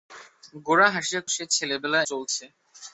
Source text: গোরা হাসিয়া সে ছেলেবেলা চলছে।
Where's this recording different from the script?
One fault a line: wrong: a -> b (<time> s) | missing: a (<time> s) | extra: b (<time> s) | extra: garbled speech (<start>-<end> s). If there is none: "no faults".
no faults